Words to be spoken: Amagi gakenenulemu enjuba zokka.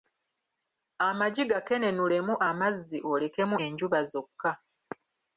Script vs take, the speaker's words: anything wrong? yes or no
yes